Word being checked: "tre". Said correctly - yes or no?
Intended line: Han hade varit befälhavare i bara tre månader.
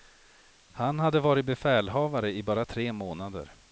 yes